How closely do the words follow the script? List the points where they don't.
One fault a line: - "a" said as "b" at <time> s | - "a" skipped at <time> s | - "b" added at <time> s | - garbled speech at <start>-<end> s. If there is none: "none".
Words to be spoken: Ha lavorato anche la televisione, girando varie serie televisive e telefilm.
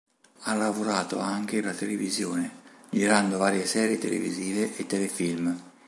none